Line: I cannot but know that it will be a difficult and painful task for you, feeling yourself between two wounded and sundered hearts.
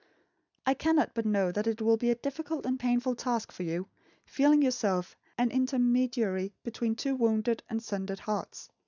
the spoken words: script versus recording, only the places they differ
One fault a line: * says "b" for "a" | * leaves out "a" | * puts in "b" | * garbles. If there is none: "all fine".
* puts in "an intermediary"